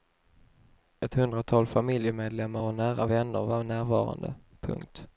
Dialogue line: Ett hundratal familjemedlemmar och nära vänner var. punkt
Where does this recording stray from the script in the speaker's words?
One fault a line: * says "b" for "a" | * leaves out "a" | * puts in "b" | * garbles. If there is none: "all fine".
* puts in "närvarande"